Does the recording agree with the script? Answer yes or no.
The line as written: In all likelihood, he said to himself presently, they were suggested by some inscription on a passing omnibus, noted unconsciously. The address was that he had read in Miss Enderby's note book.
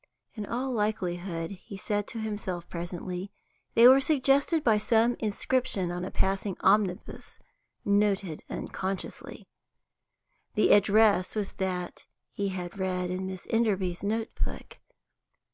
yes